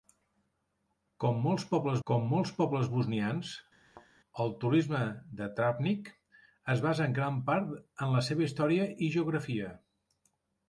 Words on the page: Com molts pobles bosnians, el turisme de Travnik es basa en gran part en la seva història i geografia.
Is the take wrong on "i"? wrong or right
right